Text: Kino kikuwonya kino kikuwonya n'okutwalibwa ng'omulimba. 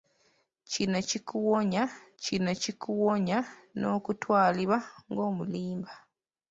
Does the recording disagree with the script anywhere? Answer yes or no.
no